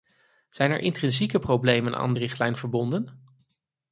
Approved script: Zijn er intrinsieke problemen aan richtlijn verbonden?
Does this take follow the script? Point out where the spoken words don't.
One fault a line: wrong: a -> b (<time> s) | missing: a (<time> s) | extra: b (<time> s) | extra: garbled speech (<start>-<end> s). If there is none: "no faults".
no faults